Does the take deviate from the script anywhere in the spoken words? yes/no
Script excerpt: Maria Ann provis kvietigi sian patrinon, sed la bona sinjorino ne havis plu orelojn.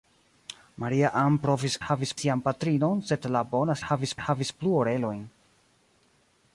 yes